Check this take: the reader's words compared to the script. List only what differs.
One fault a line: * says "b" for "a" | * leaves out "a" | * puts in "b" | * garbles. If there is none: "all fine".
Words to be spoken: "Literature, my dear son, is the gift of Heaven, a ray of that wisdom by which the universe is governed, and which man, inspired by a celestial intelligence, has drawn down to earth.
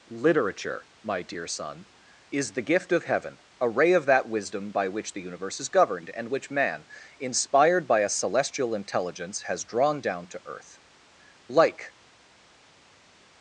* puts in "Like"